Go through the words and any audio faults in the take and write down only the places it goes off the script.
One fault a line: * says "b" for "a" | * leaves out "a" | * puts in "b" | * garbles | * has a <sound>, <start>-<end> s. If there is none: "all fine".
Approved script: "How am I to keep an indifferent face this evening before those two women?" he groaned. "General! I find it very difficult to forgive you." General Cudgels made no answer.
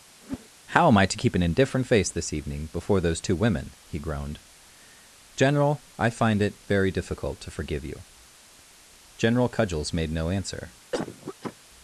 * has a whoosh, 0.2-0.5 s
* has a cough, 10.9-11.6 s